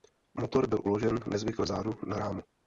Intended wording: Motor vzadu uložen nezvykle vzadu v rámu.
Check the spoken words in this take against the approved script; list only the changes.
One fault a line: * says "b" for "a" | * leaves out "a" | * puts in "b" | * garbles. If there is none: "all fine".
* says "byl" for "vzadu"
* says "na" for "v"